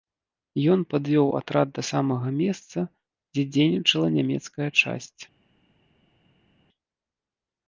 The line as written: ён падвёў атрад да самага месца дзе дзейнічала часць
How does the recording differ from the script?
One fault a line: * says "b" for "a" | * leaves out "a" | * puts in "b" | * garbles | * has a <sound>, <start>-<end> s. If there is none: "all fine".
* puts in "нямецкая"